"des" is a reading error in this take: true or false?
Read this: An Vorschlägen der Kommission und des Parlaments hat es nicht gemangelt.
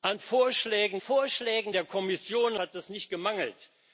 true